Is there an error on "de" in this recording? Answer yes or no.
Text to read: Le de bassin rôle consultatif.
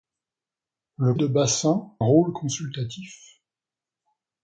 no